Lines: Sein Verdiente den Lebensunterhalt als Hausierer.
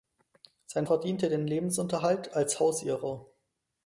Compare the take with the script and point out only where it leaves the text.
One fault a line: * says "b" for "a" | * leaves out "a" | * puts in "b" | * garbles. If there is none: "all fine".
all fine